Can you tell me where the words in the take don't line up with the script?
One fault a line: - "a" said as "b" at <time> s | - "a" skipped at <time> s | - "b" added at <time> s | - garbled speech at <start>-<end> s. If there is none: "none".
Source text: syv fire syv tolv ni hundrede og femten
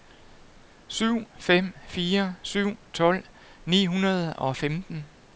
- "fem" added at 1.4 s